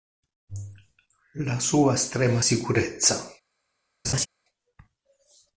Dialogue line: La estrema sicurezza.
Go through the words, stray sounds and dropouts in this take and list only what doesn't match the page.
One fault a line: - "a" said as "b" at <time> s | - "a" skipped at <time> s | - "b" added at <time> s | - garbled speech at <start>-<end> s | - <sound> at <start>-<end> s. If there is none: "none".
- "sua" added at 1.6 s
- laugh at 4.0-4.3 s